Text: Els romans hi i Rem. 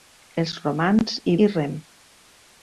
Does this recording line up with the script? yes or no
yes